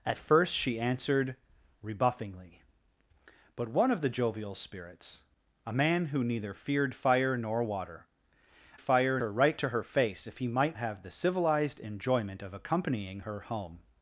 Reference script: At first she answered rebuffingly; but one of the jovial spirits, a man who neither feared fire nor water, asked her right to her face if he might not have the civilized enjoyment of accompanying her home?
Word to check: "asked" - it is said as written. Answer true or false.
false